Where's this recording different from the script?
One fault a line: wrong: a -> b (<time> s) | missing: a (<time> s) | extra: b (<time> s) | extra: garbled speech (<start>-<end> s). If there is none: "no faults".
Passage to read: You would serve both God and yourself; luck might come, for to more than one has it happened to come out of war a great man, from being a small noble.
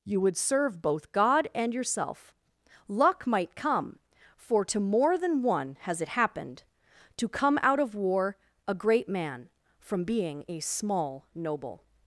no faults